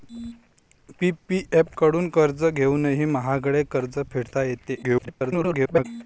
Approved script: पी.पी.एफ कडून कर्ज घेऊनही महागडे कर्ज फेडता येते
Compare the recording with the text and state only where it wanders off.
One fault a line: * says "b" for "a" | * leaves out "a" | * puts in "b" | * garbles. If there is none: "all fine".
* garbles